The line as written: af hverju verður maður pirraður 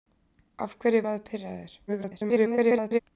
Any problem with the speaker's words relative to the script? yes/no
yes